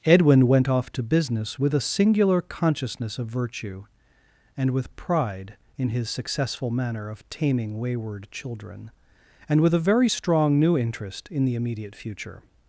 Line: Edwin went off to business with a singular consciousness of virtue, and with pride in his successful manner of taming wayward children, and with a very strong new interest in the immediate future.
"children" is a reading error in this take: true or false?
false